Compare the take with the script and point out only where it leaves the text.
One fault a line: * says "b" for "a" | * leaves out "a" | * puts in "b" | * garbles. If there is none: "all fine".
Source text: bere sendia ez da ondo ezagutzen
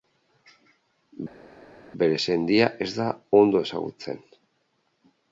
all fine